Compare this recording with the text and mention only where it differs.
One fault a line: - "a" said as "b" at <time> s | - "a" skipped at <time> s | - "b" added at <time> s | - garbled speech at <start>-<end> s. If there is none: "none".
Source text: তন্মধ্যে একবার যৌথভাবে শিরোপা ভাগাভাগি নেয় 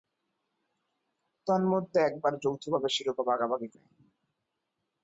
none